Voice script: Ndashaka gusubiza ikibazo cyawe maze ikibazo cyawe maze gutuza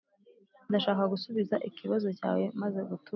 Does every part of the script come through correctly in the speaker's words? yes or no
no